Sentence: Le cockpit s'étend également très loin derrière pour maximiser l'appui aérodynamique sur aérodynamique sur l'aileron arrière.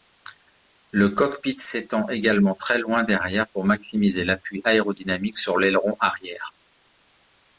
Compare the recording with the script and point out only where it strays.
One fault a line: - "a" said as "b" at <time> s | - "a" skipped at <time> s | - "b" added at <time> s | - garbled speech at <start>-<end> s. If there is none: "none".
- "aérodynamique sur" skipped at 5.6 s